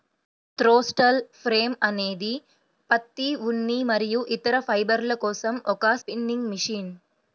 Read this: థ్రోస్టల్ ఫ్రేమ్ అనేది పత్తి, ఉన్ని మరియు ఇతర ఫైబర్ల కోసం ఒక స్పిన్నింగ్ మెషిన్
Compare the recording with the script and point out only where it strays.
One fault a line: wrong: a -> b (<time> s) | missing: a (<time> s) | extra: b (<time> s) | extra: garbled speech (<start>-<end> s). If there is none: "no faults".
no faults